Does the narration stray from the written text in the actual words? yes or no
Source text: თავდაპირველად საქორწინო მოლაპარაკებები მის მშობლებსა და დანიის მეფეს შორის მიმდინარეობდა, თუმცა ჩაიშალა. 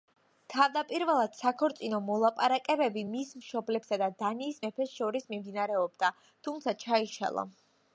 no